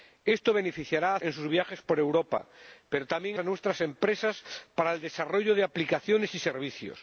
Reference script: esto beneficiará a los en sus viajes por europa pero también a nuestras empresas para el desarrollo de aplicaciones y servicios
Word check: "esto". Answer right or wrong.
right